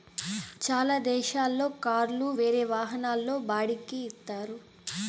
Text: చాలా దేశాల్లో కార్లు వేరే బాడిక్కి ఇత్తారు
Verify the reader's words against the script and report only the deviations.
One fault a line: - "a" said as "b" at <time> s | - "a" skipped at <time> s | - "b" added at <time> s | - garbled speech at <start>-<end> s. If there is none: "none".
- "వాహనాల్లో" added at 2.7 s